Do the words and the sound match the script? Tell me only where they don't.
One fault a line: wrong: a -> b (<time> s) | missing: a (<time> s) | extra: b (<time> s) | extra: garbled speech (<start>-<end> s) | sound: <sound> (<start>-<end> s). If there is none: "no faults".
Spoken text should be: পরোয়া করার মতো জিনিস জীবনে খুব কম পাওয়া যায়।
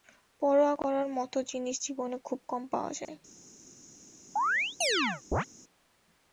sound: dropout (3.0-3.1 s)
sound: chirp (4.4-5.5 s)